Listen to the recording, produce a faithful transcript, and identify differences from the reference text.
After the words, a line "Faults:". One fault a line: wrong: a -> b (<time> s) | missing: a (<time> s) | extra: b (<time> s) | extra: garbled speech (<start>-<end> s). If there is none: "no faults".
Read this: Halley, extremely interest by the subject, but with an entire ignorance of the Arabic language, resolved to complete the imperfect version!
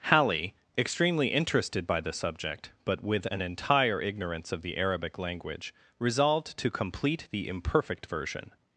Halley, extremely interested by the subject, but with an entire ignorance of the Arabic language, resolved to complete the imperfect version!
Faults:
wrong: interest -> interested (1.3 s)